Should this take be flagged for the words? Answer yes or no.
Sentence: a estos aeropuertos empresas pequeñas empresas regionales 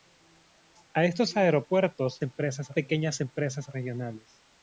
no